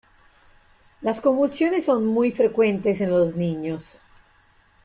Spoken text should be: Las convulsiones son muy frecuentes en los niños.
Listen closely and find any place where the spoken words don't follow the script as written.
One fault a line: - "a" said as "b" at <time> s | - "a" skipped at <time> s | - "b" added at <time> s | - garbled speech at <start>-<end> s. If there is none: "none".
none